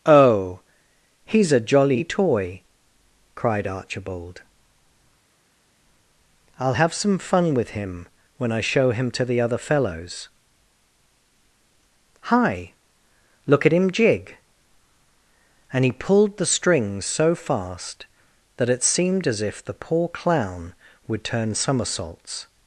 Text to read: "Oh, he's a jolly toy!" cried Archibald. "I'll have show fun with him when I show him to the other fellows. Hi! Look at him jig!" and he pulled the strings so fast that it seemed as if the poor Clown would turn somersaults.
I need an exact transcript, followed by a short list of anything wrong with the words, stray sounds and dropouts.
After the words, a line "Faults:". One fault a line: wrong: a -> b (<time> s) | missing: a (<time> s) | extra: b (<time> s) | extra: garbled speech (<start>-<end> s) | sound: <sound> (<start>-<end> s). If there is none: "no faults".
"Oh, he's a jolly toy!" cried Archibald. "I'll have some fun with him when I show him to the other fellows. Hi! Look at him jig!" and he pulled the strings so fast that it seemed as if the poor Clown would turn somersaults.
Faults:
wrong: show -> some (6.9 s)